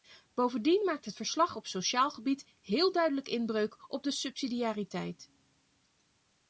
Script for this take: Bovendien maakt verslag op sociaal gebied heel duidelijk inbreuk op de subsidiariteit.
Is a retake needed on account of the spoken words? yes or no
yes